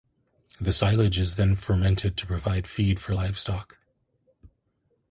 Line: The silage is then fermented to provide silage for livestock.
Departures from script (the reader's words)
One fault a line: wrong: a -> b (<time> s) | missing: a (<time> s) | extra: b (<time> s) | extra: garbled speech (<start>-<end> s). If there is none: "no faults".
wrong: silage -> feed (2.7 s)